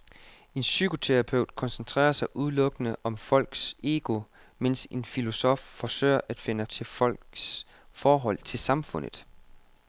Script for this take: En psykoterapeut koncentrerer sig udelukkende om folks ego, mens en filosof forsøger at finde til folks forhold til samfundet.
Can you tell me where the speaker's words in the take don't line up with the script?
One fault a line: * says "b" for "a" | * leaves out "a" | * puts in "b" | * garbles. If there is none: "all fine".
all fine